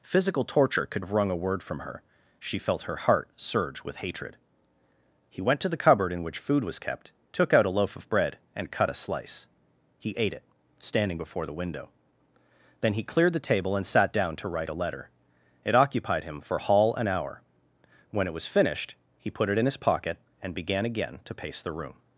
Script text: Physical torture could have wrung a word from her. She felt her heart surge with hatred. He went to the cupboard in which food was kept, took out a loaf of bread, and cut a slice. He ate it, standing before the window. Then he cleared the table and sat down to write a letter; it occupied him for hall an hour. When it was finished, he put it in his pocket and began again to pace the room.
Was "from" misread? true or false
false